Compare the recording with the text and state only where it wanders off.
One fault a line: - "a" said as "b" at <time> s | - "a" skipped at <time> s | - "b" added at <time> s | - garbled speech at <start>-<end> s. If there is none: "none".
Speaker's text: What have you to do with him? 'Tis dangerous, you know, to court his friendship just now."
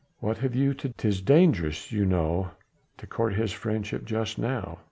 - "do with him" skipped at 0.9 s